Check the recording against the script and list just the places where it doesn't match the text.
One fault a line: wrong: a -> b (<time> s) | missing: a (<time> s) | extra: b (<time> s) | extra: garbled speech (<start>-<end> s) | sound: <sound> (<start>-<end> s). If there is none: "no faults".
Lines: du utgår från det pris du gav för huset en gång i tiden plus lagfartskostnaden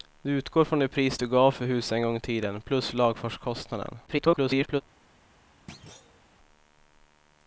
extra: garbled speech (4.1-4.8 s)
sound: thud (5.7-6.2 s)